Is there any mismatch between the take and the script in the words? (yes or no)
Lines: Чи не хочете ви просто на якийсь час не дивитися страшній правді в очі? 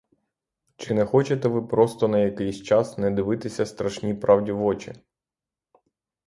no